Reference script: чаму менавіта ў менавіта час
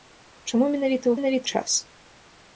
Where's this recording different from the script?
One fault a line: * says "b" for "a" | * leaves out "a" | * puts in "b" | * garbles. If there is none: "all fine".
all fine